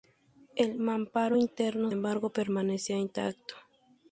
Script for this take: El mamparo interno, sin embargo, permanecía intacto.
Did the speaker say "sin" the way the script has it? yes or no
no